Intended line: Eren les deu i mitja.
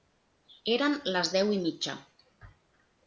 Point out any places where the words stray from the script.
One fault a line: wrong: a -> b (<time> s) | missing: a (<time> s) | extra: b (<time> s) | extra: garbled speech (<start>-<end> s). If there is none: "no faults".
no faults